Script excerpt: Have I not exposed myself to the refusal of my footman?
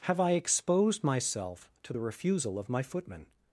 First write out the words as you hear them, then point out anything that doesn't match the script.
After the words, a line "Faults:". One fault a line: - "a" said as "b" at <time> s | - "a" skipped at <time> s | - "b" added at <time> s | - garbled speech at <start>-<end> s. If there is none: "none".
Have I exposed myself to the refusal of my footman?
Faults:
- "not" skipped at 0.3 s